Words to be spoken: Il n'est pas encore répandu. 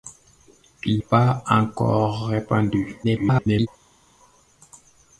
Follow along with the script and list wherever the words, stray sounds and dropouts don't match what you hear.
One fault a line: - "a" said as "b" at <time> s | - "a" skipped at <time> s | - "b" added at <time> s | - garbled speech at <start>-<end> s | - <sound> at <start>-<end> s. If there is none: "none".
- "n'est" skipped at 1.0 s
- garbled speech at 3.0-3.7 s